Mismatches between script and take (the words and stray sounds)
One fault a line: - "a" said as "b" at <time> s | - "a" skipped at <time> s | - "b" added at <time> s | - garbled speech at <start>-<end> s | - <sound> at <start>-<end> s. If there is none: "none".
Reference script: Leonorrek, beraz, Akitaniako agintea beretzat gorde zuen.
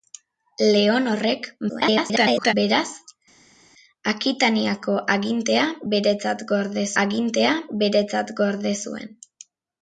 - garbled speech at 1.7-2.5 s
- "agintea beretzat gorde" added at 7.0 s